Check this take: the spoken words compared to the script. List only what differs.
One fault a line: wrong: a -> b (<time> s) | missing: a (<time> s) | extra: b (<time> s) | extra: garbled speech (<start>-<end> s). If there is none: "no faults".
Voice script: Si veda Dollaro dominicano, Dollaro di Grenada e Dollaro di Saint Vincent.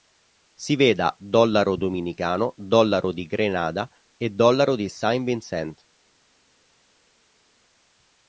no faults